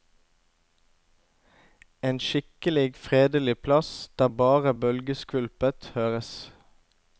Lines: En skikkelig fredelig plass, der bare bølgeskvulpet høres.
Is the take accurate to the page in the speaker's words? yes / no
yes